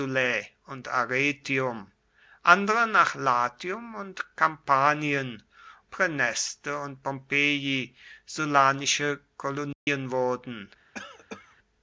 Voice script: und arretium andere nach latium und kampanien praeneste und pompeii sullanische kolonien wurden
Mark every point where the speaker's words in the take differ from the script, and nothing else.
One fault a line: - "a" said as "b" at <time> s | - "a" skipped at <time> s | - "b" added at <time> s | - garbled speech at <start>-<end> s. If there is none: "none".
none